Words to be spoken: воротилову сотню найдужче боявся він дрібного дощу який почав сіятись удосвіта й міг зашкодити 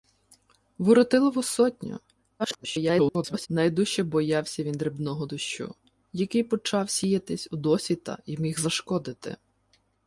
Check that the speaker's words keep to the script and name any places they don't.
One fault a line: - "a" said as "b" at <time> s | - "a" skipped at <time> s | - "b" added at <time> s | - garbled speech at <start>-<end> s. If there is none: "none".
- garbled speech at 2.4-3.5 s